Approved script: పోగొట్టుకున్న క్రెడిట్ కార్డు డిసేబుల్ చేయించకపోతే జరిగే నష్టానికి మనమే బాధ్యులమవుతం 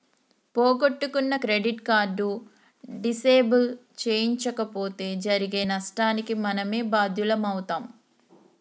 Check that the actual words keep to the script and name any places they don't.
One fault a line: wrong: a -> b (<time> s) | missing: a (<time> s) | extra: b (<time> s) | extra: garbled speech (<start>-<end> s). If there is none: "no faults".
no faults